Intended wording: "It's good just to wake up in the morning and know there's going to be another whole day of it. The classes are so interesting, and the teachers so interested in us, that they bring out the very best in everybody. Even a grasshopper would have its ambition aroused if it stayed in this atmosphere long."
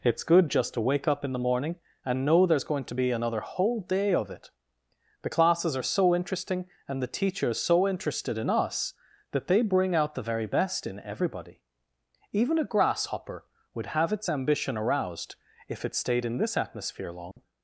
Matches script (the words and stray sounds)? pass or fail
fail